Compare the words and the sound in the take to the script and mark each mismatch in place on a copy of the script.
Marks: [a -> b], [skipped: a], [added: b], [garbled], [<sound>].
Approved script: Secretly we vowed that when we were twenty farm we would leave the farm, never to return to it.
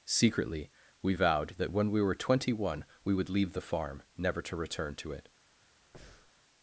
Secretly we vowed that when we were twenty [farm -> one] we would leave the farm, never to return to it. [breath]